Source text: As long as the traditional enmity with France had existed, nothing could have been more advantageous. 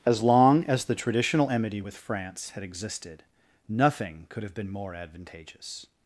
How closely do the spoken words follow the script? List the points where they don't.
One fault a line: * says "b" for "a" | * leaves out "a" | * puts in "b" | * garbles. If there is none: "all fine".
all fine